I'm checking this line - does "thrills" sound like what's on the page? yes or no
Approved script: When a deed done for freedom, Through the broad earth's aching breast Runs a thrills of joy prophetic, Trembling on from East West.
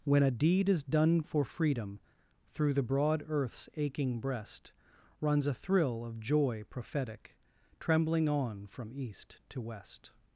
no